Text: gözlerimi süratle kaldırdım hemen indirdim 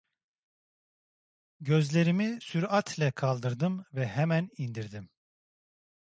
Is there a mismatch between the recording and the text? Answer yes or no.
yes